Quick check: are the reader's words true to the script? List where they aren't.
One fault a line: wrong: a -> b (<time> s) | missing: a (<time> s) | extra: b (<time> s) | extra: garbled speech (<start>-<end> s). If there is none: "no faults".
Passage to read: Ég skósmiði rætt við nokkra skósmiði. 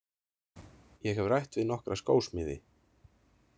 wrong: skósmiði -> hef (1.2 s)